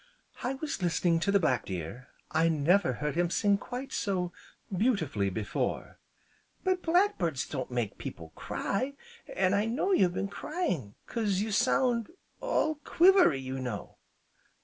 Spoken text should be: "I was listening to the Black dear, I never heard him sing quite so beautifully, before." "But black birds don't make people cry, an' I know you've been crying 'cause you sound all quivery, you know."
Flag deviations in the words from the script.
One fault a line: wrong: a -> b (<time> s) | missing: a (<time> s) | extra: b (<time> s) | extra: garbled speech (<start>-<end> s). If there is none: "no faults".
no faults